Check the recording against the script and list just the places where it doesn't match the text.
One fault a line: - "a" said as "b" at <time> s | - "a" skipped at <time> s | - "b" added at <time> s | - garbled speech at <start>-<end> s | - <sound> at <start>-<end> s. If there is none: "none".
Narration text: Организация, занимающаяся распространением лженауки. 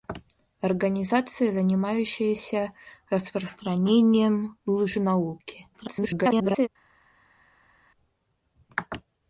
- garbled speech at 5.7-6.7 s